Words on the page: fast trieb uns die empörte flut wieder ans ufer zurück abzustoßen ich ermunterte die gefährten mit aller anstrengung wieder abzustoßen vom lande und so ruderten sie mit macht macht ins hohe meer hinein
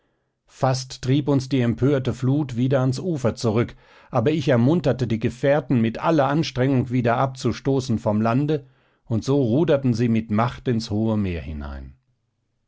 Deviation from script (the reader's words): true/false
true